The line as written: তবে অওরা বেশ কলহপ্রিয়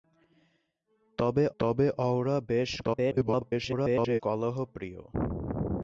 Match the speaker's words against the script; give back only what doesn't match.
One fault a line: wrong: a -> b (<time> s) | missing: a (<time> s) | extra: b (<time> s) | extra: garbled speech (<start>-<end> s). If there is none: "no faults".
extra: তবে (1.6 s)
extra: garbled speech (2.8-4.2 s)